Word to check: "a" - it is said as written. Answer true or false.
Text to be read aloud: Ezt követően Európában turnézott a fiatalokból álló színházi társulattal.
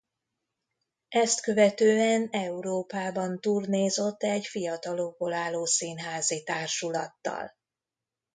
false